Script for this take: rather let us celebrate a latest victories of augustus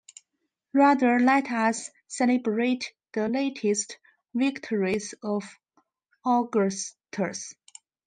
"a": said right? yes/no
no